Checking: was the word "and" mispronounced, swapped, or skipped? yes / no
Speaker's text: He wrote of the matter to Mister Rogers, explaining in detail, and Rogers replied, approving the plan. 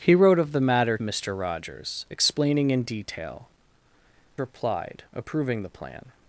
yes